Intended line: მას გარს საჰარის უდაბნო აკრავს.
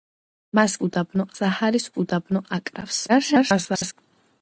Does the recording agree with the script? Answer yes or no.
no